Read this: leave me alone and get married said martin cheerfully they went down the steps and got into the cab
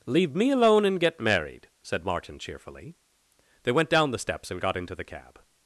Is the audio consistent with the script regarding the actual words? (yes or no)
yes